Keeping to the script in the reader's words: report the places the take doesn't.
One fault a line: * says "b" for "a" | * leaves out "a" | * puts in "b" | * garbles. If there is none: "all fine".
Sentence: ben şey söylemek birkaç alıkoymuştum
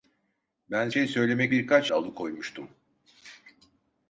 all fine